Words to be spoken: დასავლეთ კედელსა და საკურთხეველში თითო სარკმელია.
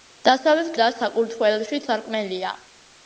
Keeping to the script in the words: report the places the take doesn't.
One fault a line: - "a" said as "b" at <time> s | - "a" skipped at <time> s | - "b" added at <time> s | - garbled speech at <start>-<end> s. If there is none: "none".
- "კედელსა" skipped at 0.7 s
- "თითო" skipped at 1.8 s